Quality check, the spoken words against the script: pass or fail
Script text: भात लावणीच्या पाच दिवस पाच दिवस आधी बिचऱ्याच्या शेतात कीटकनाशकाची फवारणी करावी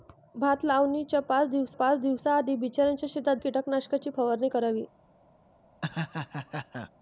pass